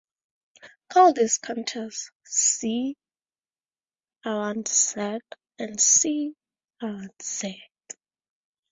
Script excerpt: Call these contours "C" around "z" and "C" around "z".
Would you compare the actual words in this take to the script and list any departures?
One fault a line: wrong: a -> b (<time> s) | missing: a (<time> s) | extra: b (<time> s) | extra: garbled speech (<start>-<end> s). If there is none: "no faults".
no faults